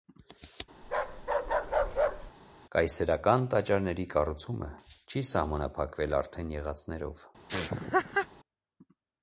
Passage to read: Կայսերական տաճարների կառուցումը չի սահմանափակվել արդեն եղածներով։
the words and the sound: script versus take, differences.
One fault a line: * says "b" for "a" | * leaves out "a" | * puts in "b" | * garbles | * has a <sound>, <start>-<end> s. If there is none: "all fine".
* has a bark, 0.8-2.3 s
* has a laugh, 7.5-8.3 s